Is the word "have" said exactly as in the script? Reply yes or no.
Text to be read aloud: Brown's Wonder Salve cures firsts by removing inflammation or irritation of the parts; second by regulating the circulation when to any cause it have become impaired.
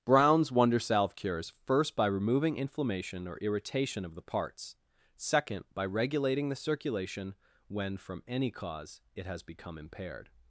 no